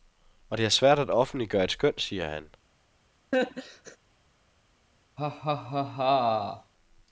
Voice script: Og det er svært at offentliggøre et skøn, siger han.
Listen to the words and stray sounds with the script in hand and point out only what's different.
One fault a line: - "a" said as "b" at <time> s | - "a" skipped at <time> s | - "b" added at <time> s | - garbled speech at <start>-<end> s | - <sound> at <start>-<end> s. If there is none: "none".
- laugh at 3.3-4.0 s
- laugh at 5.2-6.7 s